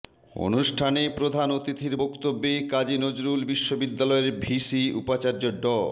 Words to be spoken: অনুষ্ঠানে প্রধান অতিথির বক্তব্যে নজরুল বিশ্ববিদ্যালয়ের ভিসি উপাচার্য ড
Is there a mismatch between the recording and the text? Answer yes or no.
yes